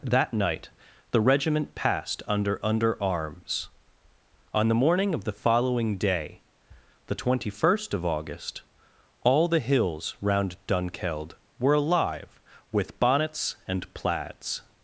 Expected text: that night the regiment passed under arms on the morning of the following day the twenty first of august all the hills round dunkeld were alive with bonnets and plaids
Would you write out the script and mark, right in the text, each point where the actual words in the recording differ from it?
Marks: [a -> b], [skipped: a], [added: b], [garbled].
that night the regiment passed under [added: under] arms on the morning of the following day the twenty first of august all the hills round dunkeld were alive with bonnets and plaids